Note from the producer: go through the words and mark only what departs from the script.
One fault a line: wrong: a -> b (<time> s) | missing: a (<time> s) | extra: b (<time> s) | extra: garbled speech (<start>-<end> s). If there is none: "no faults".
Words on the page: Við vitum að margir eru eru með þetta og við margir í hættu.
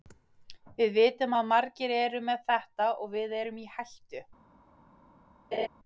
missing: eru (2.2 s)
wrong: margir -> erum (3.4 s)